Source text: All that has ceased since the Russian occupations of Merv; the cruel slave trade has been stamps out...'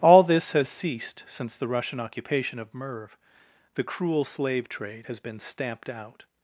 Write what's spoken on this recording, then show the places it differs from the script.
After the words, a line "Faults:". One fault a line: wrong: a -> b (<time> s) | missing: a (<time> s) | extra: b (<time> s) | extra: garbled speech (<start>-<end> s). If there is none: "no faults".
All this has ceased since the Russian occupation of Merv; the cruel slave trade has been stamped out...'
Faults:
wrong: that -> this (0.2 s)
wrong: occupations -> occupation (2.0 s)
wrong: stamps -> stamped (5.4 s)